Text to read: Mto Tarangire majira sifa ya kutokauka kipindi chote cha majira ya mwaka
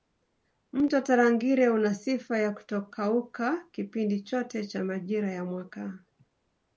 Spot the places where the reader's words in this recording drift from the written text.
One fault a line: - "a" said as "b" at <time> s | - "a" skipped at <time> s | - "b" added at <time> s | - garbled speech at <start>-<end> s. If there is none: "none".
- "majira" said as "una" at 1.7 s